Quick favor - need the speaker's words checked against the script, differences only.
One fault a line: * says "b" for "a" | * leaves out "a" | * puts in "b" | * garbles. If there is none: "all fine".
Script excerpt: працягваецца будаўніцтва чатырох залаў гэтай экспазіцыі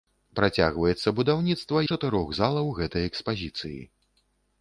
all fine